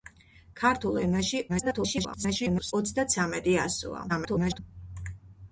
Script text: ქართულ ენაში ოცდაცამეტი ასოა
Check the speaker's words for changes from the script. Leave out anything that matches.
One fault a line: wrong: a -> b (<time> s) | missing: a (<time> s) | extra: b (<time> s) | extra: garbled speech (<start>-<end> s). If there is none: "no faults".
extra: garbled speech (1.5-2.7 s)
extra: garbled speech (4.1-4.6 s)